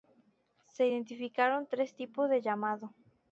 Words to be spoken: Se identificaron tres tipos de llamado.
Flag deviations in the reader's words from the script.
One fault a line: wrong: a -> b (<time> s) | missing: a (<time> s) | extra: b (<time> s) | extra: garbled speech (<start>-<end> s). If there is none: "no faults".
no faults